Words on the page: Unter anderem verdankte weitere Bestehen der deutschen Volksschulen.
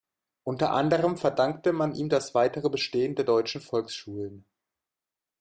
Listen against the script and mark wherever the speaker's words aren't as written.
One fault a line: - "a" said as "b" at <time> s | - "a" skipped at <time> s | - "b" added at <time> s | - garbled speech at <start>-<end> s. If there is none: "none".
- "man ihm das" added at 1.7 s